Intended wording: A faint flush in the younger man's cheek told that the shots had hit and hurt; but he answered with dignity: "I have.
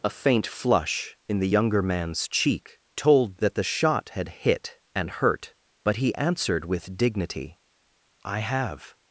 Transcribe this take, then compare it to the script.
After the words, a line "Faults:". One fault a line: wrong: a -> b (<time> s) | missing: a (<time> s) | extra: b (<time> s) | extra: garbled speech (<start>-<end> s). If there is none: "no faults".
A faint flush in the younger man's cheek told that the shot had hit and hurt; but he answered with dignity: "I have.
Faults:
wrong: shots -> shot (3.6 s)